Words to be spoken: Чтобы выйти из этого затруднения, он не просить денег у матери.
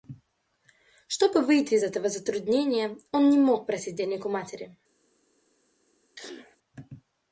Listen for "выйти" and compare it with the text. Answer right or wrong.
right